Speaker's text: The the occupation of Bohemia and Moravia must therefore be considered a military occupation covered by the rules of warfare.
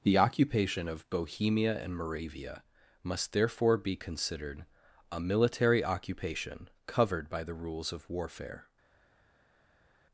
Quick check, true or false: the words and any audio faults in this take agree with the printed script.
false